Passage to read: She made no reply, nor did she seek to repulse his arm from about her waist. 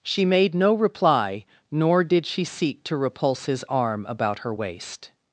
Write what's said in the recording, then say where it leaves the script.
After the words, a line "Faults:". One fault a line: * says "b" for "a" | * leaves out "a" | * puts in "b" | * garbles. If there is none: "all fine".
She made no reply, nor did she seek to repulse his arm about her waist.
Faults:
* leaves out "from"